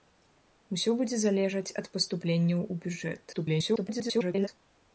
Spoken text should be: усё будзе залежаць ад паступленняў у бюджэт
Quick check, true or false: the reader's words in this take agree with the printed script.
false